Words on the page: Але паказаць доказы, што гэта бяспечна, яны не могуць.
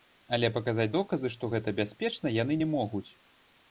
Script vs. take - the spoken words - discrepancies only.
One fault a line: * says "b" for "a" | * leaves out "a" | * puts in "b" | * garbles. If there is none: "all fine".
all fine